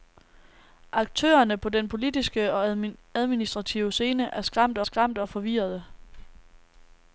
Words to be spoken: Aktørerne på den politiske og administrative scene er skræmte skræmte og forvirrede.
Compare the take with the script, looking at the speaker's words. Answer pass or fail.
pass